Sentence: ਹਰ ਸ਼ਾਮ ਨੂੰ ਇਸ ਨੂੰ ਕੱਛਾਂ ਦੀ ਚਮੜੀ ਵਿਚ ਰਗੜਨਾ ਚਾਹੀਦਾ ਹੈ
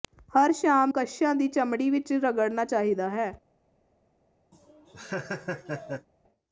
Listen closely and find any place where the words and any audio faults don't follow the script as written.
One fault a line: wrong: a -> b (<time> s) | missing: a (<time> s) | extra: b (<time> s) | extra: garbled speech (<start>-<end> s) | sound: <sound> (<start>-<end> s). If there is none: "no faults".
missing: ਨੂੰ ਇਸ ਨੂੰ (0.9 s)
sound: laugh (4.5-6.1 s)